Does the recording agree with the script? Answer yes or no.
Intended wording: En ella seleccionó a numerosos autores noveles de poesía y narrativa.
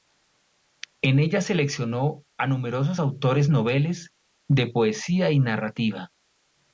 yes